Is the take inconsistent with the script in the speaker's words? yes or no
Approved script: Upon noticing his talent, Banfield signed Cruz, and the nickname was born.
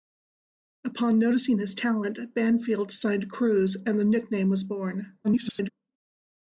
yes